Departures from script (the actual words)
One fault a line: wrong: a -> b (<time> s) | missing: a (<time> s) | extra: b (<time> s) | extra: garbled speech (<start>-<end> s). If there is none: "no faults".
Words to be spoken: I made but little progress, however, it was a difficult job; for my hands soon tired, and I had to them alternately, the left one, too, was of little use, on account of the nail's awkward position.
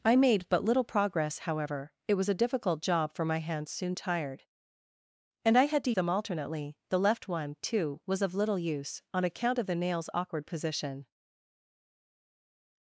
no faults